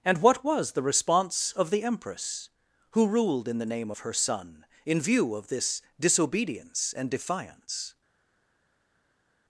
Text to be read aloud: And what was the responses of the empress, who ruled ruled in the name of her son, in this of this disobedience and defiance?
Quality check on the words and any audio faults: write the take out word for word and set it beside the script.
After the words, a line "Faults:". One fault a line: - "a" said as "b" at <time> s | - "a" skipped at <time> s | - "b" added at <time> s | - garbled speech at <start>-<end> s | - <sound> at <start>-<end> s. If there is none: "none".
And what was the response of the empress, who ruled in the name of her son, in view of this disobedience and defiance?
Faults:
- "responses" said as "response" at 0.8 s
- "ruled" skipped at 3.5 s
- "this" said as "view" at 5.0 s